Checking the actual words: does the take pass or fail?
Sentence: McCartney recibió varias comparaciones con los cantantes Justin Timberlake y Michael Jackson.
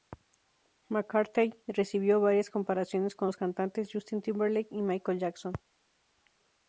pass